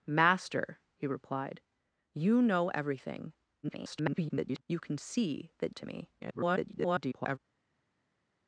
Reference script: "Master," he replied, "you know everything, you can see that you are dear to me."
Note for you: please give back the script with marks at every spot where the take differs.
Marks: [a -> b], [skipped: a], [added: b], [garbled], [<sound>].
"Master," he replied, "you know everything, [garbled] you can see that [skipped: you are dear] to me." [garbled]